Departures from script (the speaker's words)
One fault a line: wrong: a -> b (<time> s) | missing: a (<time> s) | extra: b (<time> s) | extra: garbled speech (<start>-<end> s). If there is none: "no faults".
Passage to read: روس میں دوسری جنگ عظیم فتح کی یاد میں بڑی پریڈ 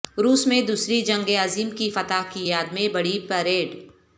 extra: کی (1.7 s)